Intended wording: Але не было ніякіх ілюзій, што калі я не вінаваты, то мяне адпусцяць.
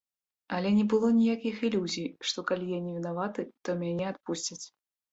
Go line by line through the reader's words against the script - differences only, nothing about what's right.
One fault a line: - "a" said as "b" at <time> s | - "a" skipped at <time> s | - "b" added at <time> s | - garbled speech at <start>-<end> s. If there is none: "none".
none